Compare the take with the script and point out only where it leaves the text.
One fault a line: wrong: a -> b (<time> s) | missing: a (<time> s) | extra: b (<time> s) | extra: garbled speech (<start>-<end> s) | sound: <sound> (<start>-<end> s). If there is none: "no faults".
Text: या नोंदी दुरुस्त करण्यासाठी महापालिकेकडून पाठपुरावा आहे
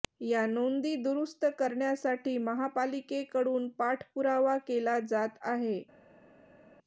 extra: केला जात (4.6 s)